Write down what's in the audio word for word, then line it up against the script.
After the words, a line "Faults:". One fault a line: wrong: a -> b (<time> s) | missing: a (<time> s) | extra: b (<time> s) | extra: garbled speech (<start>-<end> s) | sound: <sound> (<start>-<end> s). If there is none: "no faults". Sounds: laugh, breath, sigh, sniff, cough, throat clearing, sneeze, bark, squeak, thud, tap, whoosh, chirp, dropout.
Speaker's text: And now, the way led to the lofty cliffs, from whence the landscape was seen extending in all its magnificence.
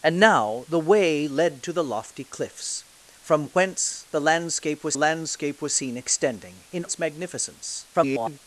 And now, the way led to the lofty cliffs, from whence the landscape was landscape was seen extending in its magnificence. [garbled]
Faults:
extra: landscape was (5.0 s)
missing: all (6.8 s)
extra: garbled speech (7.9-8.4 s)